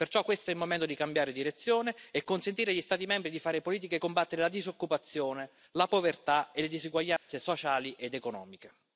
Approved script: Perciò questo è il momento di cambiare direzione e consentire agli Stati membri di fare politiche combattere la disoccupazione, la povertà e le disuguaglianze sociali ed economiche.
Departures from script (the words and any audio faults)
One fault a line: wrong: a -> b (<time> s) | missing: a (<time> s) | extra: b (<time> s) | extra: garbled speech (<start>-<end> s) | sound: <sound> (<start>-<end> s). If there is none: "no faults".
sound: dropout (7.2-7.3 s)